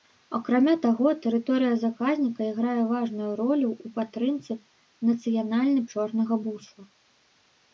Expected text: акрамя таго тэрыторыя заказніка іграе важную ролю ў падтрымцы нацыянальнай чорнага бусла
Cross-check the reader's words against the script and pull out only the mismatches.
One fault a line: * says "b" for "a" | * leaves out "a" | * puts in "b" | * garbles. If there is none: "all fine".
all fine